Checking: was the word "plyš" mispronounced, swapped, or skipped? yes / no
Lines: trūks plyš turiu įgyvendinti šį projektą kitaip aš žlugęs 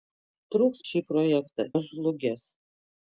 yes